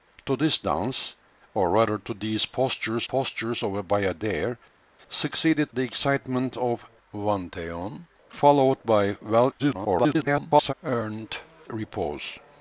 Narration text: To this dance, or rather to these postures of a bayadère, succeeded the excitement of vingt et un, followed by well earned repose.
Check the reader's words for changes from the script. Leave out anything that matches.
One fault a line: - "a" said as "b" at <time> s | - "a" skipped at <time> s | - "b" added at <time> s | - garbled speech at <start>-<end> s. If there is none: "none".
- "postures" added at 3.0 s
- garbled speech at 9.6-10.7 s